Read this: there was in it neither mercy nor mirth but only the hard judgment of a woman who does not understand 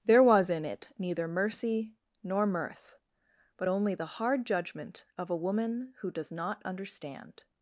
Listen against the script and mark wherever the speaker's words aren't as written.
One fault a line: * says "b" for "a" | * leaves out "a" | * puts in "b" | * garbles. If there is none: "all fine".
all fine